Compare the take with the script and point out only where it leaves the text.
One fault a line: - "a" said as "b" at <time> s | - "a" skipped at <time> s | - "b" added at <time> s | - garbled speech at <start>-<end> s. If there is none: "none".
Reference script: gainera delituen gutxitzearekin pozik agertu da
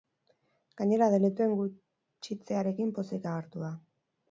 none